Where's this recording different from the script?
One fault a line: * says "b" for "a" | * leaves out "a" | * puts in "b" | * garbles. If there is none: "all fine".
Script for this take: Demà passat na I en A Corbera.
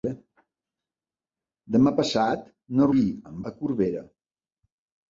all fine